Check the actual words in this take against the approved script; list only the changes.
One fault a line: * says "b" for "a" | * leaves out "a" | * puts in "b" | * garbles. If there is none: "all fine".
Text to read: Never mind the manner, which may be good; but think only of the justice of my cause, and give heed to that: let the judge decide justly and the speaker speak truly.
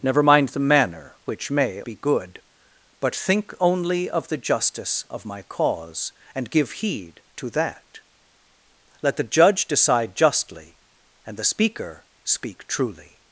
all fine